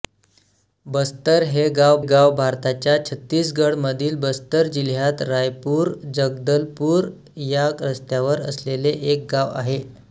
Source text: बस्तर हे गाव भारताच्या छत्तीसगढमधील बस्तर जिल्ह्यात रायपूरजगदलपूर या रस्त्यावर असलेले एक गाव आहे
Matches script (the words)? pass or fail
fail